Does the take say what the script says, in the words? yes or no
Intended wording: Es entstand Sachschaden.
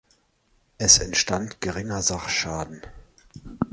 no